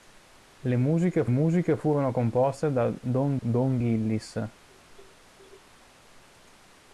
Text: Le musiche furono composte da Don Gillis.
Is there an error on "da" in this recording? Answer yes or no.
no